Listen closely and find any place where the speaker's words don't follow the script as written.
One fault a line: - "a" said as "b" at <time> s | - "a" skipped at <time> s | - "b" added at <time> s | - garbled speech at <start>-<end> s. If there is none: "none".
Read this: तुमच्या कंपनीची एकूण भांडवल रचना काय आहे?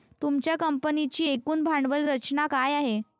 none